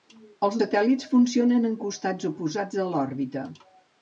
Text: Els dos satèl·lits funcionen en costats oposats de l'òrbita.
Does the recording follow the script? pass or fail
fail